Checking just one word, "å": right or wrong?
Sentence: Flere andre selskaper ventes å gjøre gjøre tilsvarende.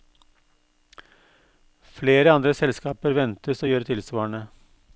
right